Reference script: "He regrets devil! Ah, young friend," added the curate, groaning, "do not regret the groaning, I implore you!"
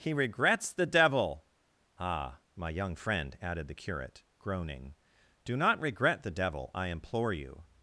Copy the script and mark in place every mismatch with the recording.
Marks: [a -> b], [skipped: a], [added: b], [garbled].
"He regrets [added: the] devil! Ah, [added: my] young friend," added the curate, groaning, "do not regret the [groaning, -> devil] I implore you!"